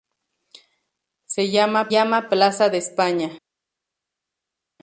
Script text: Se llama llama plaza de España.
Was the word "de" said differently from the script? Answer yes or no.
no